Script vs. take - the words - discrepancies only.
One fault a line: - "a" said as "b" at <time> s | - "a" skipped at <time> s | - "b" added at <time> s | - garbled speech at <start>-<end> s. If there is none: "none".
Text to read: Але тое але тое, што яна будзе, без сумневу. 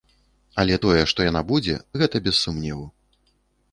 - "але тое" skipped at 1.0 s
- "гэта" added at 2.0 s